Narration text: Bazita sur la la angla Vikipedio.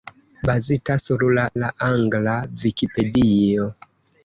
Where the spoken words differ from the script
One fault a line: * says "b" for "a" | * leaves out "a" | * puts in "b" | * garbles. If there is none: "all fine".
all fine